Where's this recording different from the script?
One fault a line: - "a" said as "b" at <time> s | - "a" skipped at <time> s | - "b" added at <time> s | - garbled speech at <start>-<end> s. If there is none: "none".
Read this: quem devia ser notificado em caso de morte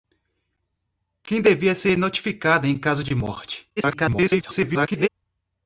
- garbled speech at 3.8-5.1 s